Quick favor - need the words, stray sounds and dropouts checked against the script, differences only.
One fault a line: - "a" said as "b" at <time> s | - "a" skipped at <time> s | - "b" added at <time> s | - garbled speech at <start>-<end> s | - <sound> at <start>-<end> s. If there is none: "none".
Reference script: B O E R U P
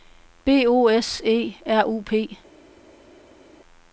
- "S" added at 0.9 s